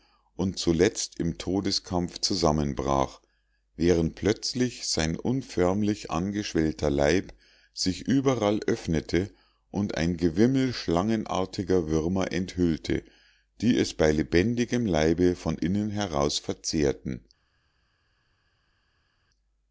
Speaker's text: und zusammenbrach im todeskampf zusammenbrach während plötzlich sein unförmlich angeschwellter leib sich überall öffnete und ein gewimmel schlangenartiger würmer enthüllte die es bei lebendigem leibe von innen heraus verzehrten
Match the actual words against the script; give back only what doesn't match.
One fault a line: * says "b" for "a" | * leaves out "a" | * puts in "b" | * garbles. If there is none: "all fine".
* says "zuletzt" for "zusammenbrach"